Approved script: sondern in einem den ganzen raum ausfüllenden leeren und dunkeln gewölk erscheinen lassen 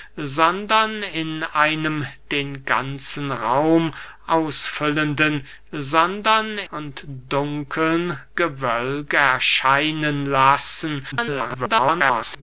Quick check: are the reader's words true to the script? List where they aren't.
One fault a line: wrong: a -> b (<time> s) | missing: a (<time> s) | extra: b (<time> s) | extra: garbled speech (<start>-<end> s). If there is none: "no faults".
wrong: leeren -> sondern (5.7 s)
extra: garbled speech (11.1-12.4 s)